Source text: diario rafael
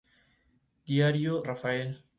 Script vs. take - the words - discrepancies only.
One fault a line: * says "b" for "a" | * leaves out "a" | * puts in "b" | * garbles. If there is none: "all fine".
all fine